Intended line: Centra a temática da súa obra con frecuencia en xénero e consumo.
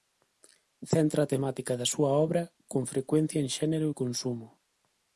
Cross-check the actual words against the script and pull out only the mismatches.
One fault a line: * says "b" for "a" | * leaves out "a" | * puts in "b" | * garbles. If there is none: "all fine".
all fine